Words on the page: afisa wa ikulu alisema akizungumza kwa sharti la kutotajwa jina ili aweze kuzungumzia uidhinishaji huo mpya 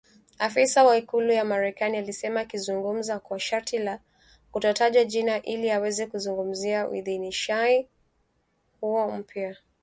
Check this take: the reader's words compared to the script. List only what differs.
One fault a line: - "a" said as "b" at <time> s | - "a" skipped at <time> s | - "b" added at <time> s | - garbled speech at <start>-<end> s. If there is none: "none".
- "ya Marekani" added at 1.3 s